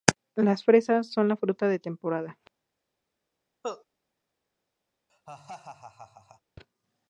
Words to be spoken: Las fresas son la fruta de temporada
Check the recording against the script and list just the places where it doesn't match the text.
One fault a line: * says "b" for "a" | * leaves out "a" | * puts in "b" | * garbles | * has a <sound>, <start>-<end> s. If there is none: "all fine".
* has a cough, 3.6-3.9 s
* has a laugh, 5.1-6.4 s